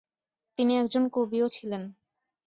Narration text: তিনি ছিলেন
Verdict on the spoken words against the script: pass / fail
fail